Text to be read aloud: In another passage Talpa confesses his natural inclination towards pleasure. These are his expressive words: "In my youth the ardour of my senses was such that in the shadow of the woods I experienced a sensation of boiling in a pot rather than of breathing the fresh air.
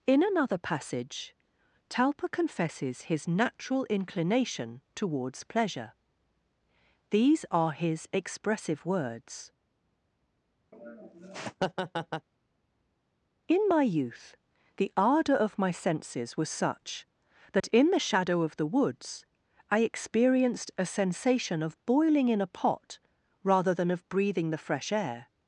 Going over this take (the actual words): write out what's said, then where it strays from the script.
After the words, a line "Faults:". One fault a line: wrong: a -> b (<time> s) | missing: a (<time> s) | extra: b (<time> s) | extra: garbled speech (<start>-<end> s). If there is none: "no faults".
In another passage Talpa confesses his natural inclination towards pleasure. These are his expressive words: "In my youth the ardour of my senses was such that in the shadow of the woods I experienced a sensation of boiling in a pot rather than of breathing the fresh air.
Faults:
no faults